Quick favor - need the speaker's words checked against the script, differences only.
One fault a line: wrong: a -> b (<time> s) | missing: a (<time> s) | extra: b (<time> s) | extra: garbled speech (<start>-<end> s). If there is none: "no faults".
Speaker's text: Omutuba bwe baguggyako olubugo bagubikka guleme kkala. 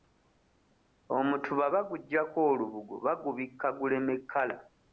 missing: bwe (1.6 s)